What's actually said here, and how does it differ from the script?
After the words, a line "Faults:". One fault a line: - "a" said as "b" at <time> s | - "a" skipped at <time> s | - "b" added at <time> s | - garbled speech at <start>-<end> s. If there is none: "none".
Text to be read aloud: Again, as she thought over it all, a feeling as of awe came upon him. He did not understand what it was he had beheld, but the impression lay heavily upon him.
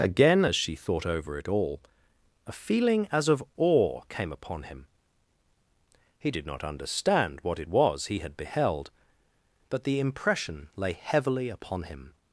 Again, as she thought over it all, a feeling as of awe came upon him. He did not understand what it was he had beheld, but the impression lay heavily upon him.
Faults:
none